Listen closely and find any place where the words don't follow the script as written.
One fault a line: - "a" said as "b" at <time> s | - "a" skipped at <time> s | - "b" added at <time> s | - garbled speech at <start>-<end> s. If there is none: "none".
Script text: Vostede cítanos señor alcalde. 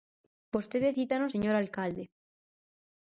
none